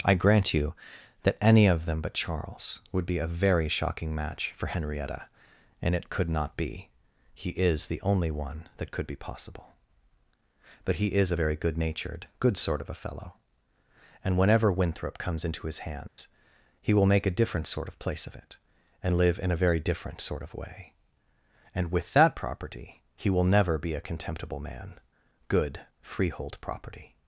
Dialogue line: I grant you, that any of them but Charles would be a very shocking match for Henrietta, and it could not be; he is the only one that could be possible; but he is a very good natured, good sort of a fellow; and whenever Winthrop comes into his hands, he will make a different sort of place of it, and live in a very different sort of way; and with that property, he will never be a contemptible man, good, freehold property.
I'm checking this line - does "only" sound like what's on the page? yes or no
yes